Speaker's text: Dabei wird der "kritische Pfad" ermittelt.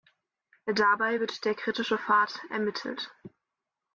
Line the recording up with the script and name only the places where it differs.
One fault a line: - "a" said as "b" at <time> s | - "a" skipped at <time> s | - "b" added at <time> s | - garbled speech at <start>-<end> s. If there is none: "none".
none